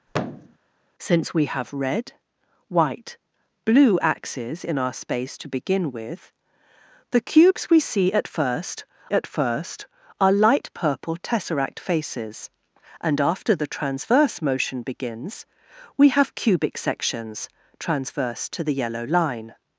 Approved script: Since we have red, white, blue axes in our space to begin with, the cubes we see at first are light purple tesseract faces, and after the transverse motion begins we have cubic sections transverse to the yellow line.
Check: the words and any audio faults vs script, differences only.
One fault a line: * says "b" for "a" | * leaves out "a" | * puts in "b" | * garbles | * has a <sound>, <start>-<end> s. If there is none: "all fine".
* has a thud, 0.1-0.6 s
* puts in "at first"